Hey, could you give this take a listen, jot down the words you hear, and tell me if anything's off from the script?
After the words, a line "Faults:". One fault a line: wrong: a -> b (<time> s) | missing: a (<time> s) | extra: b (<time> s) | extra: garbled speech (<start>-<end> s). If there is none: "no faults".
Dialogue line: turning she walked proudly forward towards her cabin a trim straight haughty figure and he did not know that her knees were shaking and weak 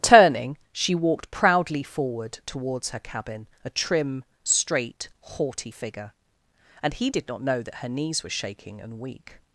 turning she walked proudly forward towards her cabin a trim straight haughty figure and he did not know that her knees were shaking and weak
Faults:
no faults